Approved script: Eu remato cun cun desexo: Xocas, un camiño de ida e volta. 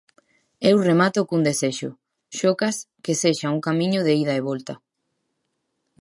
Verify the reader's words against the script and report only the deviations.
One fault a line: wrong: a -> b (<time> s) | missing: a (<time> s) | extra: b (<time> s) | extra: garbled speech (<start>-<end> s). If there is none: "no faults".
missing: cun (1.4 s)
extra: que sexa (3.0 s)